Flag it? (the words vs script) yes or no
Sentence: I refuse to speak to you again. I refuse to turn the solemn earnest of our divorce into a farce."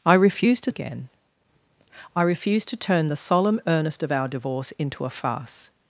yes